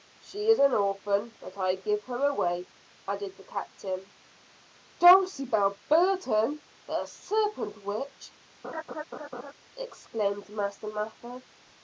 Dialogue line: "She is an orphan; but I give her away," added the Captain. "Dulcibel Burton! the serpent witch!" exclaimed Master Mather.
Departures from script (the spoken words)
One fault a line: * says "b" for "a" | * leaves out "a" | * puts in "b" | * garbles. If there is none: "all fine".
all fine